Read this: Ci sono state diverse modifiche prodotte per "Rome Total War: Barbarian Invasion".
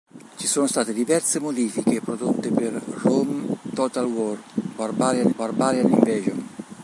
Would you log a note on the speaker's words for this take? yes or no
yes